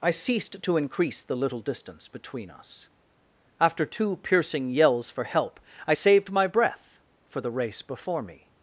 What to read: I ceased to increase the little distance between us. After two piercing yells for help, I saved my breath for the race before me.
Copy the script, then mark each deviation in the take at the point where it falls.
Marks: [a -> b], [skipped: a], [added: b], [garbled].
I ceased to increase the little distance between us. After two piercing yells for help, I saved my breath for the race before me.